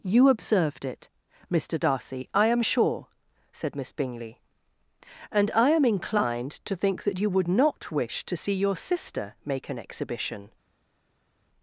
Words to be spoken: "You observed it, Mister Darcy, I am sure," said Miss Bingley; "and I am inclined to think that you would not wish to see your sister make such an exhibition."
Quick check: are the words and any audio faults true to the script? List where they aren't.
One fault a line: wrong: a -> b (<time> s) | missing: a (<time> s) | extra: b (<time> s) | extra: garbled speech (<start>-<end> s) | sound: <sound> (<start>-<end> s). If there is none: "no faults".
missing: such (9.7 s)